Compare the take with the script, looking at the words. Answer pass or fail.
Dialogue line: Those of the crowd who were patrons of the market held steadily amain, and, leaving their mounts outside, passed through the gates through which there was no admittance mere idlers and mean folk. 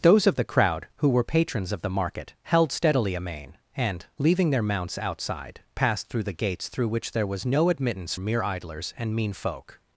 pass